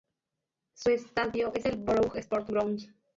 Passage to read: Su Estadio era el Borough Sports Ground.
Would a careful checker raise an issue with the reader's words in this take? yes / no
yes